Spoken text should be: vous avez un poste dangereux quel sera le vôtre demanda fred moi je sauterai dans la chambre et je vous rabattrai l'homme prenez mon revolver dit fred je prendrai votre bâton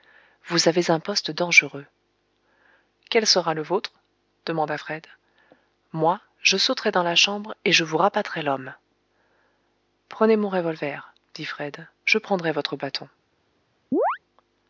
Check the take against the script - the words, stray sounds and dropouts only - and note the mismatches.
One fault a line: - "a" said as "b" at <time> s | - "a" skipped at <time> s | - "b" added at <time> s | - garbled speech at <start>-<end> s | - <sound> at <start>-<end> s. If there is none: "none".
- chirp at 13.9-14.2 s